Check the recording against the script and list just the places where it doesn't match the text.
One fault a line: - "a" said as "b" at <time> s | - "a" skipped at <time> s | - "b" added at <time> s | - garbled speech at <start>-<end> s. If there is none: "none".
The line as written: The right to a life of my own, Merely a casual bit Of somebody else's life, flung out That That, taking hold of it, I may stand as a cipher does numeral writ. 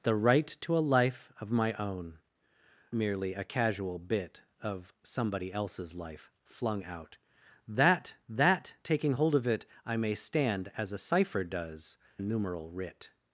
none